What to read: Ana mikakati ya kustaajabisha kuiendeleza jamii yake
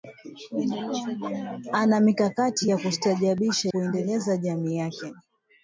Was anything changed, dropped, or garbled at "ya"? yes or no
no